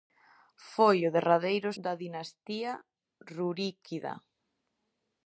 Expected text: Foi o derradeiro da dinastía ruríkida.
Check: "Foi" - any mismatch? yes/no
no